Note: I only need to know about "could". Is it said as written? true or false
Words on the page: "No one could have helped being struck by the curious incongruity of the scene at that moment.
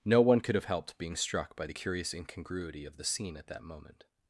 true